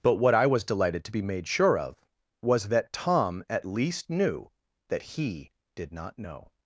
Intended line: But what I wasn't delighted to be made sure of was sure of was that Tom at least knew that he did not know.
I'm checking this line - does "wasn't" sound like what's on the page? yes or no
no